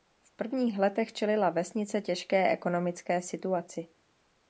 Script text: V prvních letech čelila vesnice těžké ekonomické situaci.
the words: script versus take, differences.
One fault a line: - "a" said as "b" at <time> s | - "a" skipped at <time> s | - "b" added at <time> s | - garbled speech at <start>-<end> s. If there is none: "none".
none